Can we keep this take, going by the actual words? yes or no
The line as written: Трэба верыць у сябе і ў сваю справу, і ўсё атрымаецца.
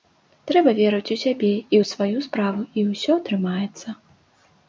yes